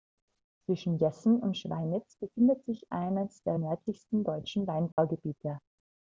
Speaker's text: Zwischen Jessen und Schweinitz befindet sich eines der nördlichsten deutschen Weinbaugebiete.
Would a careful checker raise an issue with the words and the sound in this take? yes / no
yes